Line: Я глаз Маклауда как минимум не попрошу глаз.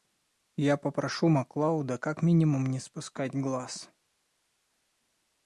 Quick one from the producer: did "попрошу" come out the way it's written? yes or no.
no